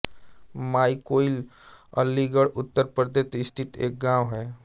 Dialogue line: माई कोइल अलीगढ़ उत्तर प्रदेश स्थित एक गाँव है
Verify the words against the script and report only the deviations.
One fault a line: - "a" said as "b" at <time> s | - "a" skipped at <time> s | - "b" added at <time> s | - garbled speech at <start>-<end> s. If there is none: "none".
none